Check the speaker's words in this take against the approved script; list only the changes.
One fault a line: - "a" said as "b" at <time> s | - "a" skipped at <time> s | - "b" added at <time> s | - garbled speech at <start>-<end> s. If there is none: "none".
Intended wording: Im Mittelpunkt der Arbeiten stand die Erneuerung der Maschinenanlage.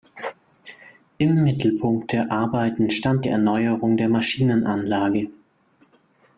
none